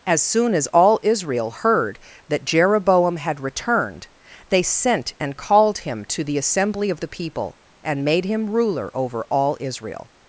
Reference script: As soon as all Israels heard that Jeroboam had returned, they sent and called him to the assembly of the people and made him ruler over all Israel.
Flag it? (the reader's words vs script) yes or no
yes